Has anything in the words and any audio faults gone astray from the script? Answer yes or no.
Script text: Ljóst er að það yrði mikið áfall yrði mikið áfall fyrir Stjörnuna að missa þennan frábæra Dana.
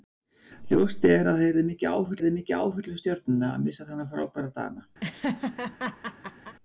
yes